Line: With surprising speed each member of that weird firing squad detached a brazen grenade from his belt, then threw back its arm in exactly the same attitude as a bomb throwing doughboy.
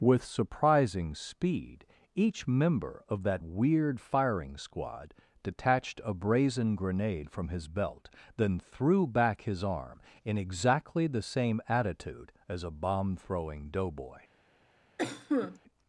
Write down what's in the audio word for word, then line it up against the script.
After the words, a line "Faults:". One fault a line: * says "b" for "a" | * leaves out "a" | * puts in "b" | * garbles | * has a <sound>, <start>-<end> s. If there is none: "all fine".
With surprising speed each member of that weird firing squad detached a brazen grenade from his belt, then threw back his arm in exactly the same attitude as a bomb throwing doughboy.
Faults:
* says "his" for "its"
* has a cough, 15.0-15.6 s